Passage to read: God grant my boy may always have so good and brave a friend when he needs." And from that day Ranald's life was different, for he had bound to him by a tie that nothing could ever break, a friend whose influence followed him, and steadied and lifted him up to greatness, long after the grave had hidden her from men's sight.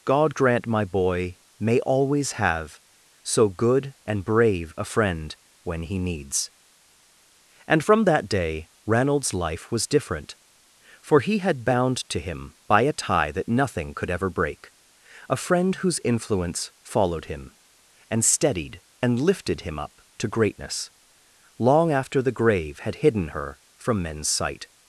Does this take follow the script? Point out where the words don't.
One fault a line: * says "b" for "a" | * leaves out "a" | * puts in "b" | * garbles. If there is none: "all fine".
all fine